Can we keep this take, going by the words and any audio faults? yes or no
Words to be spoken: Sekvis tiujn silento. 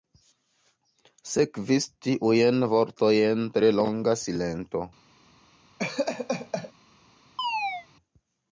no